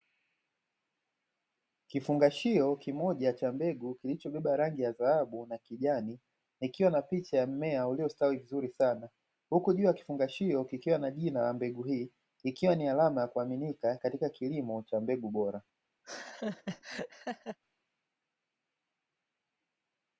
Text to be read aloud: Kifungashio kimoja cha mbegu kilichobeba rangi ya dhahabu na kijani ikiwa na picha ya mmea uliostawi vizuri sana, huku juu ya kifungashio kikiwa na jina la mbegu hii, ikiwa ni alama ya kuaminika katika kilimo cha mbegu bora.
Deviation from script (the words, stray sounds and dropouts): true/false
true